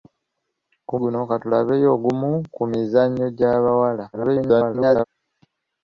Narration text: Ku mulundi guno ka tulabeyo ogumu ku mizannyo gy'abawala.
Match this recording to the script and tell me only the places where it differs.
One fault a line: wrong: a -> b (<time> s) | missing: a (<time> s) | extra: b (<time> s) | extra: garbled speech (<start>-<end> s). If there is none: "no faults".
missing: mulundi (0.9 s)
extra: garbled speech (4.1-5.0 s)